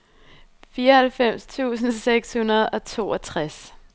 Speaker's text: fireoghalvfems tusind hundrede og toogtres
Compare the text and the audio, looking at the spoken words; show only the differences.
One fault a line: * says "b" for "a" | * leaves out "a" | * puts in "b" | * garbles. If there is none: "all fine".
* puts in "seks"